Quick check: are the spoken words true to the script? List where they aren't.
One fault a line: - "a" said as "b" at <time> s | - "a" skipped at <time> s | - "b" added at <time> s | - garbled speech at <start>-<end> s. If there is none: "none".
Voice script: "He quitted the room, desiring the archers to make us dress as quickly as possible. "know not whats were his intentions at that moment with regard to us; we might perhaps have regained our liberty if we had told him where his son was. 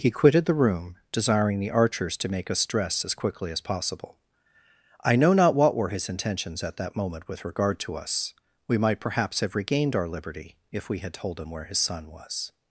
- "I" added at 5.0 s
- "whats" said as "what" at 5.5 s